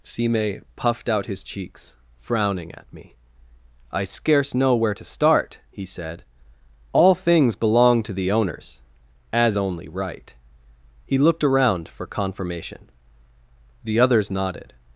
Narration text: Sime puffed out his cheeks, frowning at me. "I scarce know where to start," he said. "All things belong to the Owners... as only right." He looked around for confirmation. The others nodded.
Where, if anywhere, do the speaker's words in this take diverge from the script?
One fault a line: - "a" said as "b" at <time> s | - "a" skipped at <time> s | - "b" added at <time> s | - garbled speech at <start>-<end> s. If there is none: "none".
none